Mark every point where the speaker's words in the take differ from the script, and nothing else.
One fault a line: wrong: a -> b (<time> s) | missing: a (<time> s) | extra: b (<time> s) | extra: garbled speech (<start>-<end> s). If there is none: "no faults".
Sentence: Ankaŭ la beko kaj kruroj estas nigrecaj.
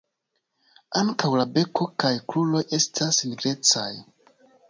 no faults